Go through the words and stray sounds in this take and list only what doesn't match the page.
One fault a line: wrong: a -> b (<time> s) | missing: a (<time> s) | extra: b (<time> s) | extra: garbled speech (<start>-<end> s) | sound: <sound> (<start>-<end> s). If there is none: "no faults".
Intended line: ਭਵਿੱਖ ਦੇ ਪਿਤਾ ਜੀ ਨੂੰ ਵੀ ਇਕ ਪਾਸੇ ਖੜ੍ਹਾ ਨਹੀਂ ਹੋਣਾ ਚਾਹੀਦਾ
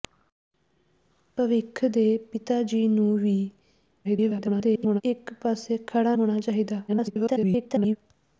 extra: garbled speech (4.0-5.0 s)
missing: ਨਹੀਂ (6.2 s)
extra: garbled speech (6.9-8.0 s)